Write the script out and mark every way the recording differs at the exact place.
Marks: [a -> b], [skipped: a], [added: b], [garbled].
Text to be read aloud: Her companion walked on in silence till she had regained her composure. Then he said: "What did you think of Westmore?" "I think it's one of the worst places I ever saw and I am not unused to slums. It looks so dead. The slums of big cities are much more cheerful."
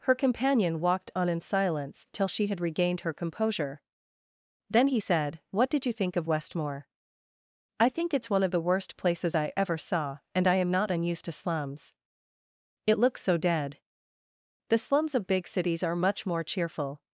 Her companion walked on in silence till she had regained her composure. Then he said: "What did you think of Westmore?" "I think it's one of the worst places I ever saw and I am not unused to slums. It looks so dead. The slums of big cities are much more cheerful."